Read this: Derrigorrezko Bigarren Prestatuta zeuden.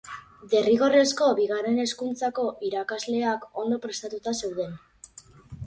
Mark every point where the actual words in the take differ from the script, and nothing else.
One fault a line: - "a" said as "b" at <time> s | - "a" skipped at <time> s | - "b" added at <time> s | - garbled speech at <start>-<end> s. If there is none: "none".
- "Hezkuntzako irakasleak ondo" added at 1.8 s